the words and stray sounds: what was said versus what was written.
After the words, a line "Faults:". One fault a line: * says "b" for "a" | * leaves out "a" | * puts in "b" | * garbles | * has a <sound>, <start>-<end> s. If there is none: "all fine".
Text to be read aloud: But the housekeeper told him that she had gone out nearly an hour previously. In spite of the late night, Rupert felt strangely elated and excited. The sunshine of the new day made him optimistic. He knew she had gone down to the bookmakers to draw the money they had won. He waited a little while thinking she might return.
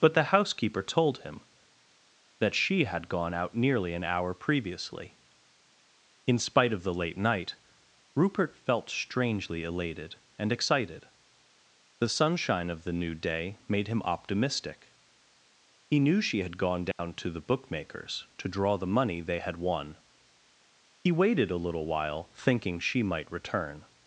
But the housekeeper told him that she had gone out nearly an hour previously. In spite of the late night, Rupert felt strangely elated and excited. The sunshine of the new day made him optimistic. He knew she had gone down to the bookmakers to draw the money they had won. He waited a little while thinking she might return.
Faults:
* has a dropout, 16.9-17.0 s